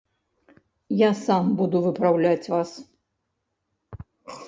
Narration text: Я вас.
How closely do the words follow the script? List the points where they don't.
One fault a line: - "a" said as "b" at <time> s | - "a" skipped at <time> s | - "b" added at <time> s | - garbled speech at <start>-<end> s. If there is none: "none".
- "сам буду выпраўляць" added at 1.2 s